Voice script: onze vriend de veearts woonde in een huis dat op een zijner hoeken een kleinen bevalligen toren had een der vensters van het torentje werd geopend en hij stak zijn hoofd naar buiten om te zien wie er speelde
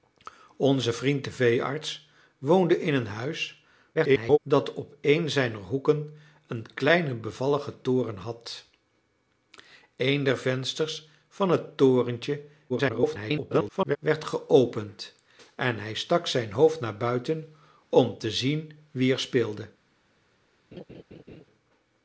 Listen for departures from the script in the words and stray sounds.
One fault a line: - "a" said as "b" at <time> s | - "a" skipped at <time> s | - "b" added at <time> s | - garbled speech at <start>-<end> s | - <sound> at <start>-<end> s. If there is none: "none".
- garbled speech at 3.9-4.4 s
- garbled speech at 12.7-14.0 s
- laugh at 20.7-21.5 s